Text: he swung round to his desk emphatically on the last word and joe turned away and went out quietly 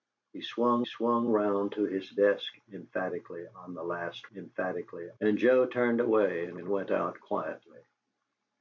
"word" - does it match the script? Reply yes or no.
no